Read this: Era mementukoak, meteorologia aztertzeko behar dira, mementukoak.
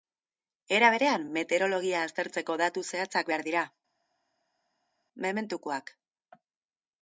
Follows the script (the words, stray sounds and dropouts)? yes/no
no